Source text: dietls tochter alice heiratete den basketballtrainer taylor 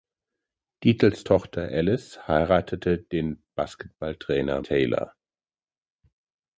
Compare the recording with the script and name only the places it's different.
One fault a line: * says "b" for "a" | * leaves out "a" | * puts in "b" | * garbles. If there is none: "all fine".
all fine